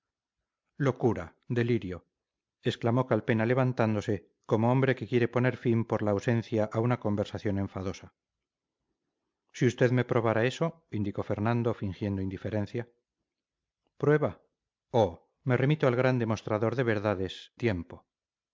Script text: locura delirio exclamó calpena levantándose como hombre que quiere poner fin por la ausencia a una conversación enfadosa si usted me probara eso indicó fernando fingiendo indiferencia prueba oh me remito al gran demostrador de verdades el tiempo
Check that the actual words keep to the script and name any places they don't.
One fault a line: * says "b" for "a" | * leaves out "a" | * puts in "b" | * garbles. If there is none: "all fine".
* leaves out "el"